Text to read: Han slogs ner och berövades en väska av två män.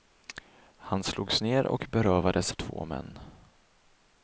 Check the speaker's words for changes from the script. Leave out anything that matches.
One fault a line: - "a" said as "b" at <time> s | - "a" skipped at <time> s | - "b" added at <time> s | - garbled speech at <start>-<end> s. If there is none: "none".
- "en väska av" skipped at 2.5 s